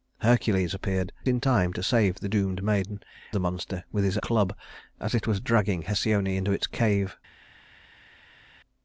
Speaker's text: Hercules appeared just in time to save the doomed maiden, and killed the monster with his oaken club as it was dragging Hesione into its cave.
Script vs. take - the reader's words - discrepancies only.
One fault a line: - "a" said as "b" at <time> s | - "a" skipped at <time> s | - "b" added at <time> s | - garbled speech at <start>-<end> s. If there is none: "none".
- "just" skipped at 1.1 s
- "and killed" skipped at 3.0 s
- "oaken" skipped at 4.2 s